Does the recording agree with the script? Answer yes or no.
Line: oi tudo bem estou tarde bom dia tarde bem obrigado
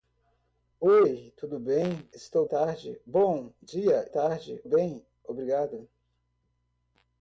yes